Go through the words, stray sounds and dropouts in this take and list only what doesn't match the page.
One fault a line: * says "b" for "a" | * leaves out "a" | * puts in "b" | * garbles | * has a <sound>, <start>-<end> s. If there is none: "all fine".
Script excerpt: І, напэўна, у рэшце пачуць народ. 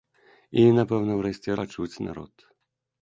all fine